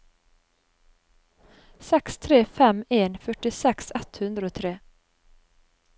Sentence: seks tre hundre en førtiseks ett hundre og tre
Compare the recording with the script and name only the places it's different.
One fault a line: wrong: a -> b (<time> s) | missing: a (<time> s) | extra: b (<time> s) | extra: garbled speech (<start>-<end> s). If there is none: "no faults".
wrong: hundre -> fem (2.6 s)